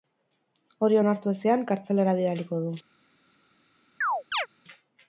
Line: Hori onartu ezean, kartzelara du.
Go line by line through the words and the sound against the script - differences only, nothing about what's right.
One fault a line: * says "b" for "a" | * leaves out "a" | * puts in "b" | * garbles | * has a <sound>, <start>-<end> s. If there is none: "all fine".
* puts in "bidaliko"
* has a chirp, 4.0-4.5 s